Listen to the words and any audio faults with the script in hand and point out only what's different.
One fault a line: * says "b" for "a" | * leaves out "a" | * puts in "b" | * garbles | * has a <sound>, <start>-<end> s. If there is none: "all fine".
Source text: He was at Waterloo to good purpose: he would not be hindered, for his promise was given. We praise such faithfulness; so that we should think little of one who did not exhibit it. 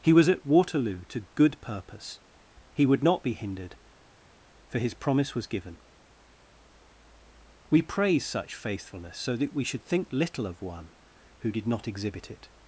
all fine